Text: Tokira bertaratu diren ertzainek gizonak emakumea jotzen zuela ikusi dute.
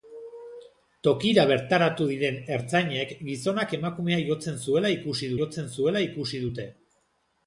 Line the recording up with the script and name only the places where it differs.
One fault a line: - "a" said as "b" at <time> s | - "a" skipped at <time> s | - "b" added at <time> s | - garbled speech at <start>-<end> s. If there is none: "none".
- "jotzen zuela ikusi" added at 5.4 s